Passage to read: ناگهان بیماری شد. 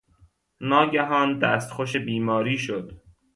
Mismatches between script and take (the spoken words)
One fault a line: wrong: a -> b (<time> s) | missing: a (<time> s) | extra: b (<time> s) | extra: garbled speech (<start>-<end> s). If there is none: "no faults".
extra: دستخوش (1.4 s)